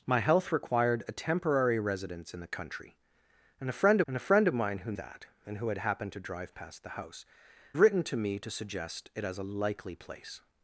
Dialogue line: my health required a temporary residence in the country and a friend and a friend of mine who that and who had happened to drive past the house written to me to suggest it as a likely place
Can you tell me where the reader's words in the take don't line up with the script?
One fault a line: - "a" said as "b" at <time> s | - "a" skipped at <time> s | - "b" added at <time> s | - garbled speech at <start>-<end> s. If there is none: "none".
none